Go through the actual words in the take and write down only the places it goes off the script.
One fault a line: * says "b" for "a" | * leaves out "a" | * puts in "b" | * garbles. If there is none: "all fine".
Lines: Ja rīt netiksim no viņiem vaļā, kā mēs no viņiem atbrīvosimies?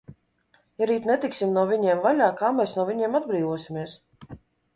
all fine